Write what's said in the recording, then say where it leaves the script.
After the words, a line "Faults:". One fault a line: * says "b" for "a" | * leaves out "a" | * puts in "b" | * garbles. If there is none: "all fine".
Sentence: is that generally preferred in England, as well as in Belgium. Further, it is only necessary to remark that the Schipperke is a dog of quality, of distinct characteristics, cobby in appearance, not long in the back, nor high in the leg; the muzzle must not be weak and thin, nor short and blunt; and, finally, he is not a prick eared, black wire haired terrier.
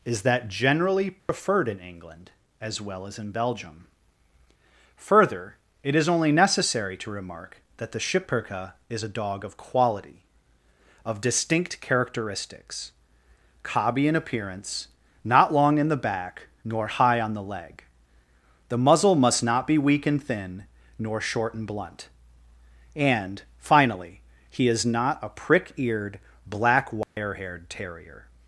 is that generally preferred in England, as well as in Belgium. Further, it is only necessary to remark that the Schipperke is a dog of quality, of distinct characteristics, cobby in appearance, not long in the back, nor high on the leg; the muzzle must not be weak and thin, nor short and blunt; and, finally, he is not a prick eared, black wire haired terrier.
Faults:
* says "on" for "in"